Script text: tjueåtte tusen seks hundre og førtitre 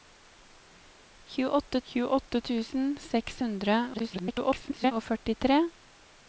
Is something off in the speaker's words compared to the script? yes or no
yes